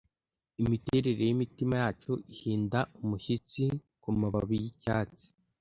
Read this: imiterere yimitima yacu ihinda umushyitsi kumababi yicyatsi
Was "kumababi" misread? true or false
false